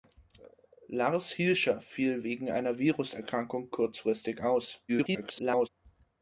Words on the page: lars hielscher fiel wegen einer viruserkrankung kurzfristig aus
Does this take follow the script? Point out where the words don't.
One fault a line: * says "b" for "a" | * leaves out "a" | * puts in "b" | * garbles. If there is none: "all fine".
* garbles